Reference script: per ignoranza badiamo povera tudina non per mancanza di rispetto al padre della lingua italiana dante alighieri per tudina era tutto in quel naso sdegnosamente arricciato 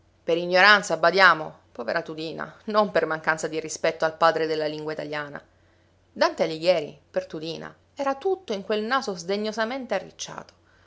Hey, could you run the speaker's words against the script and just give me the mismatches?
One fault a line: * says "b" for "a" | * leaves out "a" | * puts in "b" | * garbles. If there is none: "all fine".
all fine